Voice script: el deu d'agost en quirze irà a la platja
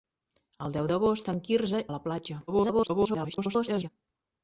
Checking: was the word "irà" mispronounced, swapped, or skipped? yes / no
yes